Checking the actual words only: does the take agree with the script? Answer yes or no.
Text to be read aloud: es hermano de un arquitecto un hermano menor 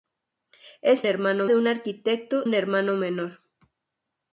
yes